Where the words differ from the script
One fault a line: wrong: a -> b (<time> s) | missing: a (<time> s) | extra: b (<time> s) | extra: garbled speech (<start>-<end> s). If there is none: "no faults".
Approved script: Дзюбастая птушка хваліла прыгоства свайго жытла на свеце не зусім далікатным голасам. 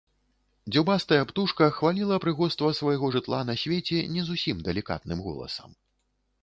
no faults